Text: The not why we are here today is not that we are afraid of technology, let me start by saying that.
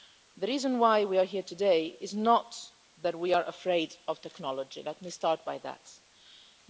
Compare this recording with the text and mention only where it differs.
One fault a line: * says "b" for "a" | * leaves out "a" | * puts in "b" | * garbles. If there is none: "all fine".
* says "reason" for "not"